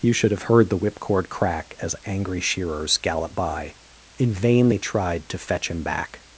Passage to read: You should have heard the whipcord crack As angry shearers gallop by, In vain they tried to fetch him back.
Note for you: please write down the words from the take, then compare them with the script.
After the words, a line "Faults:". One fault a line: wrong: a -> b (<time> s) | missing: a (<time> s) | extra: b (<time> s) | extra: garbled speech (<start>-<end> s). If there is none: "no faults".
You should have heard the whipcord crack As angry shearers gallop by, In vain they tried to fetch him back.
Faults:
no faults